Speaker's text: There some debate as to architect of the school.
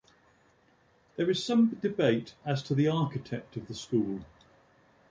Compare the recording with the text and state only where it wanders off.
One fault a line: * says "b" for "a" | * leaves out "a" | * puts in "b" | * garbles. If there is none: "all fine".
* puts in "is"
* puts in "the"